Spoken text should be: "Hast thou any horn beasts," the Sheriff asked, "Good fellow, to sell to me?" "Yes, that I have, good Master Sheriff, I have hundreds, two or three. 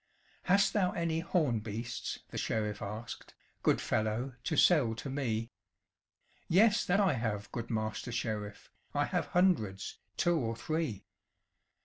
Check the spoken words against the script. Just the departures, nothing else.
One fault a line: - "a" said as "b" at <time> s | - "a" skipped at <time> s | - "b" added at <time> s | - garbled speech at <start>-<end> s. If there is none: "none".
none